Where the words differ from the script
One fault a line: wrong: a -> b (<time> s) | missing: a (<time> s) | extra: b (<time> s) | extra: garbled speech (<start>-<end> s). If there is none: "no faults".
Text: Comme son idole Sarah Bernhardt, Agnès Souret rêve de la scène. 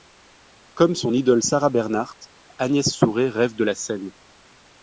no faults